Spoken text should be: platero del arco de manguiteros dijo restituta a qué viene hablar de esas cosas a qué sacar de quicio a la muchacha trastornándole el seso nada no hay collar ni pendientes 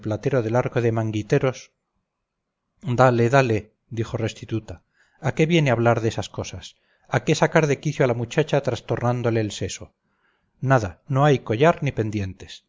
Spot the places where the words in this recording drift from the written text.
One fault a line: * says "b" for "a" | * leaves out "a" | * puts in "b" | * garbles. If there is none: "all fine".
* puts in "dale dale"